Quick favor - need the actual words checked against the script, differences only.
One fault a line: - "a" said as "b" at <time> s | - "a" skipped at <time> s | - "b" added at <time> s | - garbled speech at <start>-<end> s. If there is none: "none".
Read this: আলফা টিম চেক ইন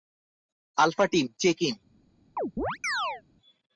none